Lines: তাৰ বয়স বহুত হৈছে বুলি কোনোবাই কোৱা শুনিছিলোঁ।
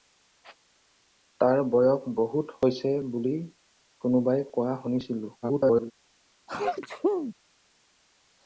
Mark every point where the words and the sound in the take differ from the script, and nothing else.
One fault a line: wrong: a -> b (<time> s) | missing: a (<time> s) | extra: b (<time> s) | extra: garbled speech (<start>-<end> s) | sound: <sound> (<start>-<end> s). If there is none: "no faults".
extra: garbled speech (5.4-5.9 s)
sound: sneeze (6.5-7.3 s)